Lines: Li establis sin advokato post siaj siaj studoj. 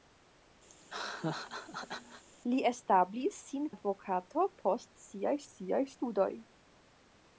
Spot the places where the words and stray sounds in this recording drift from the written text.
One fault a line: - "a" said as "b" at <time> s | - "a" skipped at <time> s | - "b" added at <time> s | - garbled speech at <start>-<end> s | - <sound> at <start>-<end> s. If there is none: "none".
- laugh at 0.7-2.2 s